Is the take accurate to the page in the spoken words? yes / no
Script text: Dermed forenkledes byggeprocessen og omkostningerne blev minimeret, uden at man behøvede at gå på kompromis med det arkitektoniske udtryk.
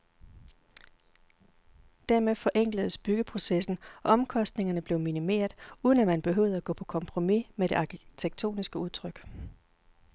yes